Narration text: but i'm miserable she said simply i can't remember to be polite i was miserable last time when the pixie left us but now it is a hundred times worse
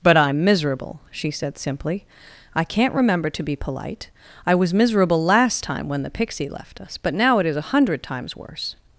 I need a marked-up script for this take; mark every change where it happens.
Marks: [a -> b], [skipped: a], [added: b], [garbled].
but i'm miserable she said simply i can't remember to be polite i was miserable last time when the pixie left us but now it is a hundred times worse